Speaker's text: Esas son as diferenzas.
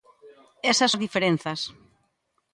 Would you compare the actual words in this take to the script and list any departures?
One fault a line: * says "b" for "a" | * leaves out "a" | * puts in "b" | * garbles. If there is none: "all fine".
* leaves out "son"